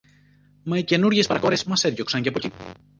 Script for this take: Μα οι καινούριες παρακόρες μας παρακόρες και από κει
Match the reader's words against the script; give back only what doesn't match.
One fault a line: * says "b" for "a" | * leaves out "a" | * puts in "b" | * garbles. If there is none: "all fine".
* says "έδιωξαν" for "παρακόρες"